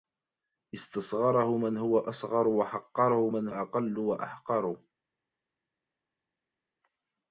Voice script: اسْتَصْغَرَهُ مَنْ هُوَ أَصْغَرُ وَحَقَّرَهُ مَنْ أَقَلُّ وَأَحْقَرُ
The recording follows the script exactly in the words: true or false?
true